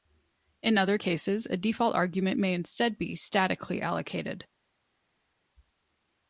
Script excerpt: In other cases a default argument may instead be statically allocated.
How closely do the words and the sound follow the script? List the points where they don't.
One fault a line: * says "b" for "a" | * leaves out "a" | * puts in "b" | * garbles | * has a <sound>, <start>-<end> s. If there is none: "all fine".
all fine